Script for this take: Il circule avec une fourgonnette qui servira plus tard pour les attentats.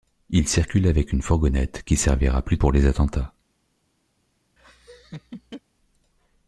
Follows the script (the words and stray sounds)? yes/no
no